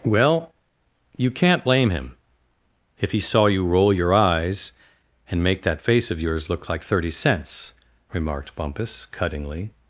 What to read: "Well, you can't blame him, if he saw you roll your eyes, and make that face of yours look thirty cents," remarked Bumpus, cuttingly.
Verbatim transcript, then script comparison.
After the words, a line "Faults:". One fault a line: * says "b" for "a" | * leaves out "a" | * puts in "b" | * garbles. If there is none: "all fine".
"Well, you can't blame him, if he saw you roll your eyes, and make that face of yours look like thirty cents," remarked Bumpus, cuttingly.
Faults:
* puts in "like"